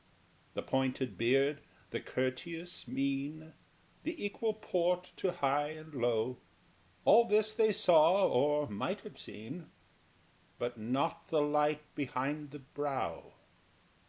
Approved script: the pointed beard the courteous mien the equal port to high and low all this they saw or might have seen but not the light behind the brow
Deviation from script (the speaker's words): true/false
false